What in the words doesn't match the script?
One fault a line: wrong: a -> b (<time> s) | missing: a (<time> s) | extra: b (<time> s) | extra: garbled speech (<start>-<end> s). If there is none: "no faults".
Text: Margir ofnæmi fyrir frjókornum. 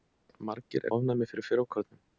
no faults